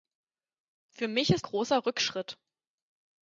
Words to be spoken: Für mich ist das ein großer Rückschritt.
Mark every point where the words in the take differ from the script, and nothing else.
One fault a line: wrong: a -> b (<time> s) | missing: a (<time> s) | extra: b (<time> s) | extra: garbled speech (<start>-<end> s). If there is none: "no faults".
missing: das ein (1.5 s)